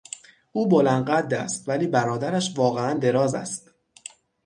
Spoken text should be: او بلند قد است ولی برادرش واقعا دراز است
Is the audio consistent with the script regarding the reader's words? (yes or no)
yes